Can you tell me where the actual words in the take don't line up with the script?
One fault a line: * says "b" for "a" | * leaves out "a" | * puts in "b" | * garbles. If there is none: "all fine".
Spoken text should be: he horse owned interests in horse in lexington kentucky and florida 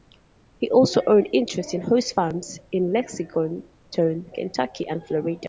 * says "also" for "horse"
* puts in "farms"